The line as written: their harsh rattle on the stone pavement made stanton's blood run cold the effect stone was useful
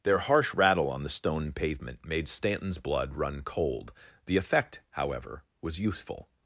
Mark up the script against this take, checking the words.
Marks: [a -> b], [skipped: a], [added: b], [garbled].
their harsh rattle on the stone pavement made stanton's blood run cold the effect [stone -> however] was useful